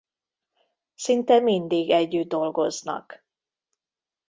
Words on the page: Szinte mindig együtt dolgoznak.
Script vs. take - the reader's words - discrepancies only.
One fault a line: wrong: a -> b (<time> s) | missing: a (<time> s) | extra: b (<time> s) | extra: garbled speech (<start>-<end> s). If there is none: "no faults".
no faults